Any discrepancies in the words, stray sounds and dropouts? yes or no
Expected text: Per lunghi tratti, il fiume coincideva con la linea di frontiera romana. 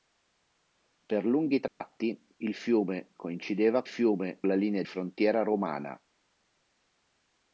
yes